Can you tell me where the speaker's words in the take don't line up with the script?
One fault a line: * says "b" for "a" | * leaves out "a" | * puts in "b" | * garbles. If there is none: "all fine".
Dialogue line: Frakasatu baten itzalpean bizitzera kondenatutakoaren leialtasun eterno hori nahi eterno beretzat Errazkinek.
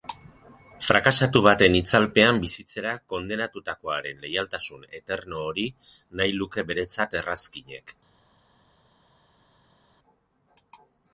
* says "luke" for "eterno"